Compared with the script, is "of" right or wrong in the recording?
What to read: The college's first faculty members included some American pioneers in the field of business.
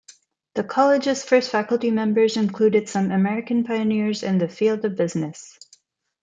right